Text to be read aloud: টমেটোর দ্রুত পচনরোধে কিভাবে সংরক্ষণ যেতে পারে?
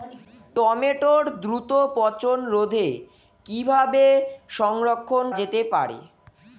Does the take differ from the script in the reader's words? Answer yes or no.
no